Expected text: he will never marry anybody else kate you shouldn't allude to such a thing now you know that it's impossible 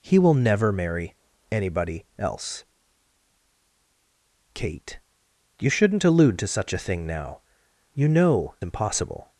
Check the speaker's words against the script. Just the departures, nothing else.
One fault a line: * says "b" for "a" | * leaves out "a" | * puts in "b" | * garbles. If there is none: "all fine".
* leaves out "that it's"